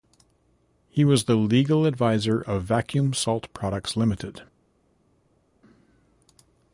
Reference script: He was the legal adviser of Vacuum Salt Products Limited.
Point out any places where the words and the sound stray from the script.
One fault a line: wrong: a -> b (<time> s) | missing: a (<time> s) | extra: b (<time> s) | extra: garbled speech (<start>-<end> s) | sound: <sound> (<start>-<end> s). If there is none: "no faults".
no faults